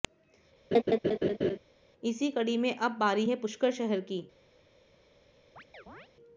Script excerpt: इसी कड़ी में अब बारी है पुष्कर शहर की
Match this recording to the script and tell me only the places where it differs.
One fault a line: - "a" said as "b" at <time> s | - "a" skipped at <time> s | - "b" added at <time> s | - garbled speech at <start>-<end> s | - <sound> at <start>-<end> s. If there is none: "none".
- laugh at 0.7-1.6 s
- chirp at 5.6-6.1 s